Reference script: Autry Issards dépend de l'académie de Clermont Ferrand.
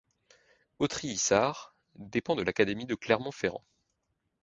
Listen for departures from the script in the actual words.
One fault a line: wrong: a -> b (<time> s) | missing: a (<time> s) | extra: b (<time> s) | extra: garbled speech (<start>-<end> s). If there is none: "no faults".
no faults